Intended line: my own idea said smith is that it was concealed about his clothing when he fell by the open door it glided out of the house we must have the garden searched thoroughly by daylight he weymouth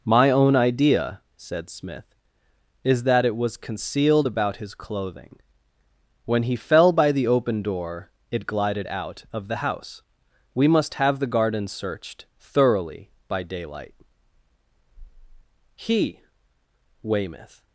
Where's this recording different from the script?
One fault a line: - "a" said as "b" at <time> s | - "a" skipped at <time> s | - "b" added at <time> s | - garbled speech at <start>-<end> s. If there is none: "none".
none